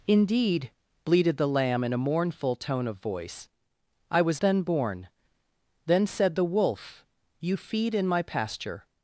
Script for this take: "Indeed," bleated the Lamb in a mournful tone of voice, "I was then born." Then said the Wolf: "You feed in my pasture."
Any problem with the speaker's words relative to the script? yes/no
no